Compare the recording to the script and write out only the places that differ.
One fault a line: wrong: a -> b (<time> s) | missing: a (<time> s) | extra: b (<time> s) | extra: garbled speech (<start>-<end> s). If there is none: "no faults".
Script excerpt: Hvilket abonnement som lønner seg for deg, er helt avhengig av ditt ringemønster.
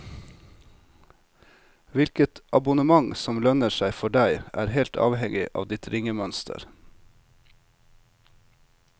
no faults